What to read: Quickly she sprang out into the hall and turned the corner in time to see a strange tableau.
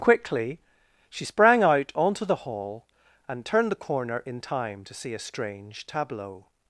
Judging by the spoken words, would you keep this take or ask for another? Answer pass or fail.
fail